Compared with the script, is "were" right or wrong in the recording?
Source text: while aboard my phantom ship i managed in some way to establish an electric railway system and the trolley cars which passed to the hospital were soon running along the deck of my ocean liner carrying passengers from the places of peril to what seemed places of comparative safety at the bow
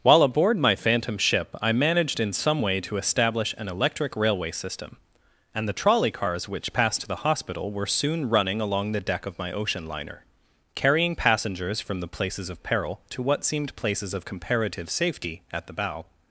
right